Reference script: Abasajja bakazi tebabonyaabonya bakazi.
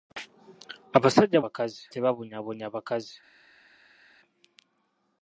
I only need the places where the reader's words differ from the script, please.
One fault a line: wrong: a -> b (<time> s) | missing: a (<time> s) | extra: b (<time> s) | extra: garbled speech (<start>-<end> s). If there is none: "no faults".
no faults